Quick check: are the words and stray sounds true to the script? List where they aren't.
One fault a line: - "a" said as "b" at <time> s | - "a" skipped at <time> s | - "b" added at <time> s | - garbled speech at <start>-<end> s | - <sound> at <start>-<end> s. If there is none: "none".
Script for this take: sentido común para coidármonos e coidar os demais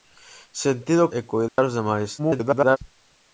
- "común para coidármonos" skipped at 1.1 s
- dropout at 1.5-1.6 s
- garbled speech at 2.2-2.8 s